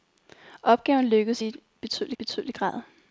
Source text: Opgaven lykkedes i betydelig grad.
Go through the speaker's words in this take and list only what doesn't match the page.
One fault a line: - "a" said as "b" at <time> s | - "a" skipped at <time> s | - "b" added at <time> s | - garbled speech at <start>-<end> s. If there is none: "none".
- "betydelig" added at 2.2 s